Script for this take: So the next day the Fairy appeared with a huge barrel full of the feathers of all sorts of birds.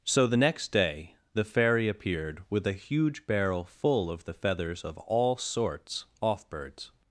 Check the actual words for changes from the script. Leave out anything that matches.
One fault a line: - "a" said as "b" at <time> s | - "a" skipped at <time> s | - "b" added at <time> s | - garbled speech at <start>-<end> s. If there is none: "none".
- "of" said as "off" at 6.2 s